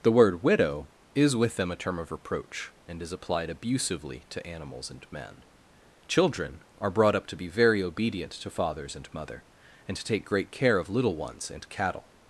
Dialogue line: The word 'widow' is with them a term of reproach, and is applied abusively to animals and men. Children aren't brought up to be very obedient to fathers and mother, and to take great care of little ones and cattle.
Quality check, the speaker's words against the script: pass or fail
fail